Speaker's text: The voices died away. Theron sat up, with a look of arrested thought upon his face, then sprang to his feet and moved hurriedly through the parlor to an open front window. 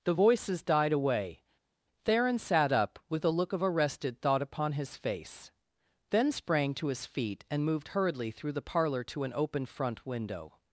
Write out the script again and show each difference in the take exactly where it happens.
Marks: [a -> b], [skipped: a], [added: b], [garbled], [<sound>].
The voices died away. Theron sat up, with a look of arrested thought upon his face, then sprang to his feet and moved hurriedly through the parlor to an open front window.